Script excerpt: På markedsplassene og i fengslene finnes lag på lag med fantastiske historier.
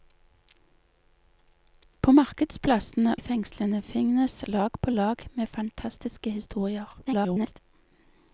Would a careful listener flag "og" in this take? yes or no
yes